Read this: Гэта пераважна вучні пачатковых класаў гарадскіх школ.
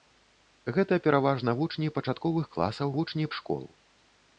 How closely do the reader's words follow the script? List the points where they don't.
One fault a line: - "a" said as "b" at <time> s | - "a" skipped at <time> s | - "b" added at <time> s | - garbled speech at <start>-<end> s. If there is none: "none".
- "гарадскіх" said as "вучні" at 3.0 s